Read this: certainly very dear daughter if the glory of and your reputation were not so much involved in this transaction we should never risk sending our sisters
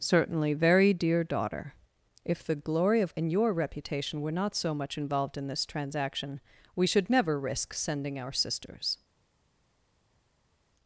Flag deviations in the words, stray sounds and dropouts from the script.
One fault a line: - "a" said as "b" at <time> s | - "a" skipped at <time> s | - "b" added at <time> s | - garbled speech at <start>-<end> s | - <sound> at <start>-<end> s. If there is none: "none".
none